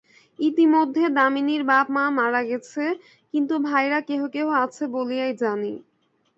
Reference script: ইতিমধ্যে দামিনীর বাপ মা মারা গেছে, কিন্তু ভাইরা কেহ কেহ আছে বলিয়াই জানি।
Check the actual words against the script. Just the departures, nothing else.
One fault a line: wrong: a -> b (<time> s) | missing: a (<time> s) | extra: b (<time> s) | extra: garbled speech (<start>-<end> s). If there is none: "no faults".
no faults